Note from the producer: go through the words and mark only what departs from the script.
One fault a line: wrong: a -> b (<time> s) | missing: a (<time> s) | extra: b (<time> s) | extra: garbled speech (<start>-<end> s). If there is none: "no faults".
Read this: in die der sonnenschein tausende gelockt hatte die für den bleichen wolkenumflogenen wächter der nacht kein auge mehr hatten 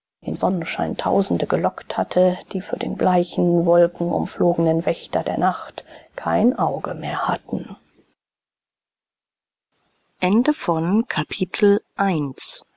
missing: die der (0.3 s)